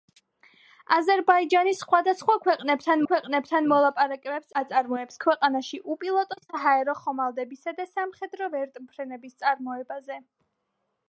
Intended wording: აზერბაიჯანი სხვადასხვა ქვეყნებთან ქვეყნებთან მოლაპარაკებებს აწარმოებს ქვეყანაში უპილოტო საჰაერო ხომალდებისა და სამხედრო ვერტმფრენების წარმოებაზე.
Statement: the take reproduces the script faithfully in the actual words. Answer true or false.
true